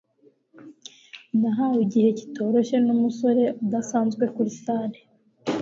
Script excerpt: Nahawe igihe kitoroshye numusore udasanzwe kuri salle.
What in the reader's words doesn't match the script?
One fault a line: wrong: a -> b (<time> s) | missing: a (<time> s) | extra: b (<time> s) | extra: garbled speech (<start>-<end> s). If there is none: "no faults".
no faults